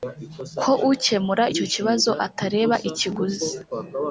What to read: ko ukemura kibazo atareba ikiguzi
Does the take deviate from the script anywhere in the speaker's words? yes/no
yes